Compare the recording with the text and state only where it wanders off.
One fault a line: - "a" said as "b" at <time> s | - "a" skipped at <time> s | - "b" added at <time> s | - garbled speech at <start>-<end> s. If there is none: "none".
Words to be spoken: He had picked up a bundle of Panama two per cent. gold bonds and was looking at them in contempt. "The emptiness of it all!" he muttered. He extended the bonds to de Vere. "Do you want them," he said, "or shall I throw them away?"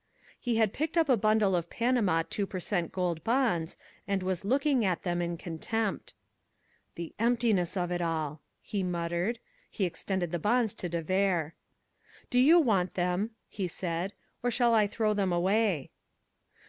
none